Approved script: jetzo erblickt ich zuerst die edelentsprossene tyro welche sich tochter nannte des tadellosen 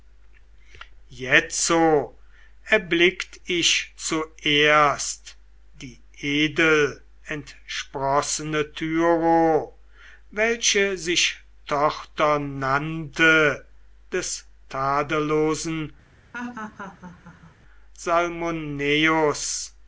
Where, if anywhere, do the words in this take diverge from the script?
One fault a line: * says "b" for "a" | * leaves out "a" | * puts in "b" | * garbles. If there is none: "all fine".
all fine